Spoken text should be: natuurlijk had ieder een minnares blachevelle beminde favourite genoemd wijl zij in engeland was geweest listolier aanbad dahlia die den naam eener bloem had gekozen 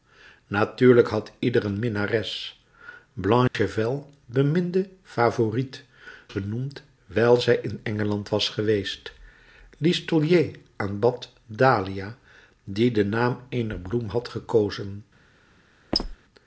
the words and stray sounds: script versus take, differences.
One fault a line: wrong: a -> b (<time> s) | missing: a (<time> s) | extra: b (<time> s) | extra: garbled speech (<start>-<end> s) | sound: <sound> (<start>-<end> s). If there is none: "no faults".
sound: dropout (3.5-3.5 s)
sound: squeak (15.9-16.2 s)